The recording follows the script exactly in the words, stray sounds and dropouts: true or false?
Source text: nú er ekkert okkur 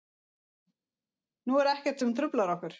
false